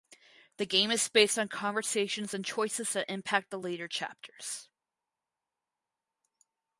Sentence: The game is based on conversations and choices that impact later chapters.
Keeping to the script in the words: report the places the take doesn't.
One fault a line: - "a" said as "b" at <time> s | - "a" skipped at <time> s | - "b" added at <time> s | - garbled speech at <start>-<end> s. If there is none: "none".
- "the" added at 3.5 s